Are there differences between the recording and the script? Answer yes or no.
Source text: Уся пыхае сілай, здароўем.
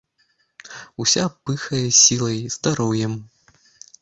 no